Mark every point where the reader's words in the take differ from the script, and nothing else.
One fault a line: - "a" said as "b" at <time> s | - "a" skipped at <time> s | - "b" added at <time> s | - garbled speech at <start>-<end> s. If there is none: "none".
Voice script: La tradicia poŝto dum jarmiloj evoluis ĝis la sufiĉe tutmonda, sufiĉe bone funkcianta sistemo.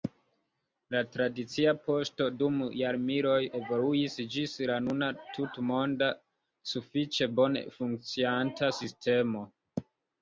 - "sufiĉe" said as "nuna" at 4.9 s